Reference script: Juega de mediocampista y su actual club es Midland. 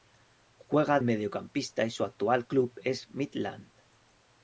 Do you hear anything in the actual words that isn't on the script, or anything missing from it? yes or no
yes